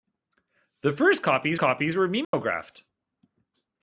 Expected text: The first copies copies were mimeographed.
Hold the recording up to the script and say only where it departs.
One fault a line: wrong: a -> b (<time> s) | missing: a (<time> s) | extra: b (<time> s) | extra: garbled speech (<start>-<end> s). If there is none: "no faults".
no faults